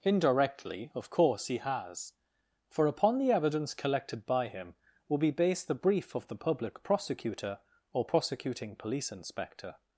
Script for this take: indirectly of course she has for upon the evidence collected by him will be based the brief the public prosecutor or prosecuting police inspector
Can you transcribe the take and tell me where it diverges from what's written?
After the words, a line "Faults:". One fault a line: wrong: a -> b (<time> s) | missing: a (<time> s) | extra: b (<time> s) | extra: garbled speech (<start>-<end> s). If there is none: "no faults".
indirectly of course he has for upon the evidence collected by him will be based the brief of the public prosecutor or prosecuting police inspector
Faults:
wrong: she -> he (1.5 s)
extra: of (6.2 s)